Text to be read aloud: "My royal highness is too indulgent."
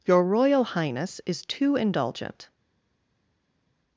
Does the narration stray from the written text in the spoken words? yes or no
yes